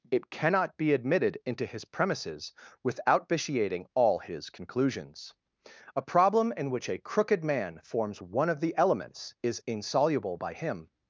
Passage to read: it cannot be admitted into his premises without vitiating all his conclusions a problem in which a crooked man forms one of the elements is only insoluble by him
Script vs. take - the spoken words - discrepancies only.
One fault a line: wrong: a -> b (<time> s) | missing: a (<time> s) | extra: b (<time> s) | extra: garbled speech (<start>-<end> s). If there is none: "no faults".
missing: only (9.6 s)